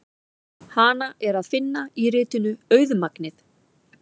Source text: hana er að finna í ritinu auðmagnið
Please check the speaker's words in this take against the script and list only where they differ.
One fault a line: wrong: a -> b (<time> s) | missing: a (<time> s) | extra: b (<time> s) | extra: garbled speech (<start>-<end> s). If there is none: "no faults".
no faults